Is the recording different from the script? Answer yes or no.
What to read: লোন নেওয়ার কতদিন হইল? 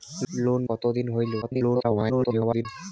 yes